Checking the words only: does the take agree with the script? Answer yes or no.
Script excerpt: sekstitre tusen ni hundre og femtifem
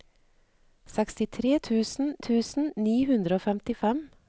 no